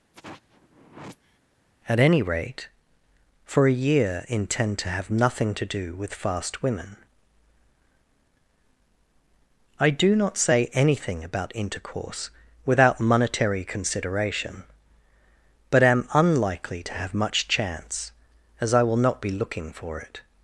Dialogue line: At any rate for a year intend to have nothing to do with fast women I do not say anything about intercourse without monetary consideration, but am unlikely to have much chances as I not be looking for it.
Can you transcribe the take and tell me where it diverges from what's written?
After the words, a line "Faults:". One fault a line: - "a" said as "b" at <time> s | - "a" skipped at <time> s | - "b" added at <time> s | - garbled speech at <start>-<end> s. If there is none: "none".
At any rate for a year intend to have nothing to do with fast women I do not say anything about intercourse without monetary consideration, but am unlikely to have much chance as I will not be looking for it.
Faults:
- "chances" said as "chance" at 17.5 s
- "will" added at 18.8 s